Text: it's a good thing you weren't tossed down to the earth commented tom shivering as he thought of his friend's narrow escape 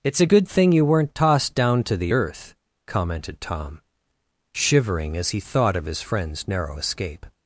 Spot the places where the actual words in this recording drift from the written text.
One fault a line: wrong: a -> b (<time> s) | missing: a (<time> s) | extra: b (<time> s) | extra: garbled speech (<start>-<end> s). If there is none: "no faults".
no faults